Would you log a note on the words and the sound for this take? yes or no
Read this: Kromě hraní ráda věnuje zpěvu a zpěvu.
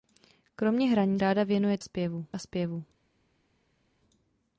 no